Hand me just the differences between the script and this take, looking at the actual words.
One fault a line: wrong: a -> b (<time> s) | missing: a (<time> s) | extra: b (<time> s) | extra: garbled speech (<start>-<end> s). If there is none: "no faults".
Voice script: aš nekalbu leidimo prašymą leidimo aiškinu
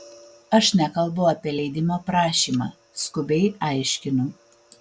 extra: apie (1.3 s)
wrong: leidimo -> skubiai (3.0 s)